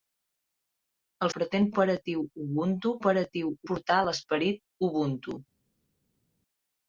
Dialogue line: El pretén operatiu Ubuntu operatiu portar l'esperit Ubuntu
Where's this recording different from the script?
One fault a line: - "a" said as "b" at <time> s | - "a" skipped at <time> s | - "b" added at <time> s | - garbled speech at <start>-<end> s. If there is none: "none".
none